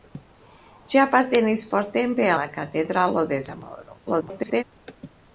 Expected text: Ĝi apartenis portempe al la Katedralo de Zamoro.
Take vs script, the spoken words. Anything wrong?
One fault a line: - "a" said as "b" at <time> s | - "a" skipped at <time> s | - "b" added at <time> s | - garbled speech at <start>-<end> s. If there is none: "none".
- "al" skipped at 2.3 s
- garbled speech at 4.1-4.6 s